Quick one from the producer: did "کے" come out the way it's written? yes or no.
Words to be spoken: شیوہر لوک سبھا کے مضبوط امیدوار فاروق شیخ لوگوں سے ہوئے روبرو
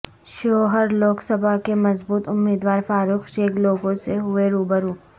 yes